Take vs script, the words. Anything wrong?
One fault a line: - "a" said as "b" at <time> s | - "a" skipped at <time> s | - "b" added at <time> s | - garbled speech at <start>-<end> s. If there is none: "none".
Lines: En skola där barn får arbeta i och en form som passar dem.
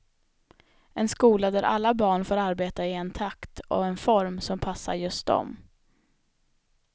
- "alla" added at 1.6 s
- "en takt" added at 2.9 s
- "just" added at 4.9 s